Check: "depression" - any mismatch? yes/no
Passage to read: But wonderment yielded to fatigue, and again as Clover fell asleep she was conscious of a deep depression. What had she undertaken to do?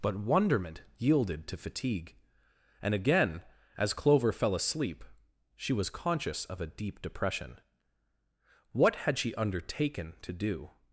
no